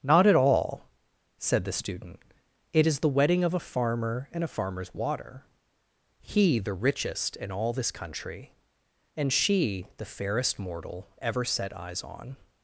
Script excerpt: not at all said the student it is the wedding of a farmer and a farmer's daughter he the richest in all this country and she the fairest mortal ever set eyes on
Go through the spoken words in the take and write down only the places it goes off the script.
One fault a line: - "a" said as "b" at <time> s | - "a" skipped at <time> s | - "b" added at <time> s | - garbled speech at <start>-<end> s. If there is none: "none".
- "daughter" said as "water" at 4.9 s